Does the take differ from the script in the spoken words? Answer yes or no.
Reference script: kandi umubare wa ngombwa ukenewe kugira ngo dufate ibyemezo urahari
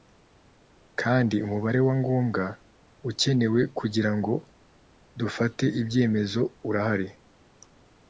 no